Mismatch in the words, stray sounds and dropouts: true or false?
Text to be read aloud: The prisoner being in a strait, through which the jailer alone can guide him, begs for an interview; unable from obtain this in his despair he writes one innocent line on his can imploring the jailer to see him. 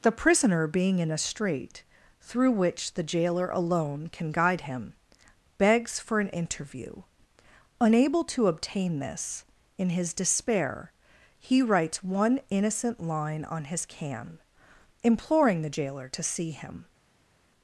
true